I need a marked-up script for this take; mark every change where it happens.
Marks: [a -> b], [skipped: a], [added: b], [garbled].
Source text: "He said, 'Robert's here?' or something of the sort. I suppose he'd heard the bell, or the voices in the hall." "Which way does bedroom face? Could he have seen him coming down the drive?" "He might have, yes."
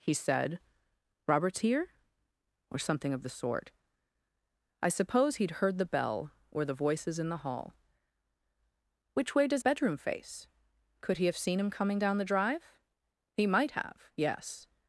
"He said, 'Robert's here?' or something of the sort. I suppose he'd heard the bell, or the voices in the hall." "Which way does bedroom face? Could he have seen him coming down the drive?" "He might have, yes."